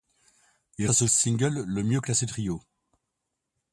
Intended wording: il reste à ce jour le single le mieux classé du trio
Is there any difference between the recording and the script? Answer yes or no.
yes